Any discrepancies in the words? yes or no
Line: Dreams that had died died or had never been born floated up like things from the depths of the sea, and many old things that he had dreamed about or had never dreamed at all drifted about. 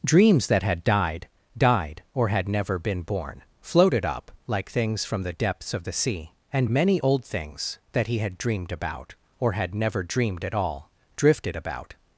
no